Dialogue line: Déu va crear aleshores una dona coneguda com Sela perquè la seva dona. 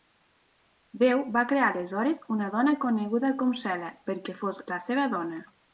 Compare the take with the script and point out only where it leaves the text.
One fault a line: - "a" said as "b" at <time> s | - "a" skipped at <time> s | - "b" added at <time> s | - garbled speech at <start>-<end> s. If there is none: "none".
- "fos" added at 4.5 s